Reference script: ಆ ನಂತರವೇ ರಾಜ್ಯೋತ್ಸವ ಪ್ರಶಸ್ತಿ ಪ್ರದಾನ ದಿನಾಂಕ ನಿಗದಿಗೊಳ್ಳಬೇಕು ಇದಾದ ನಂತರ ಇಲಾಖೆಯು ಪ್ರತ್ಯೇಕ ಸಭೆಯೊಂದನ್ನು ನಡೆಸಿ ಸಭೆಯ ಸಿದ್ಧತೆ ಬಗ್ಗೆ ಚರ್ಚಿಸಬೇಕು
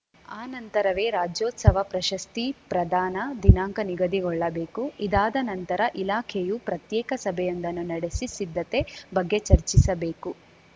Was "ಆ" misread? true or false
false